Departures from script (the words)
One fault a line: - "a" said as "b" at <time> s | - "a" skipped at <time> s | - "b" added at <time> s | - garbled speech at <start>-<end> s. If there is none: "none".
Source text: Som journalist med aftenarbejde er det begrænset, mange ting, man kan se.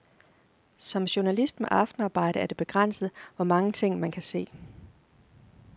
- "hvor" added at 3.4 s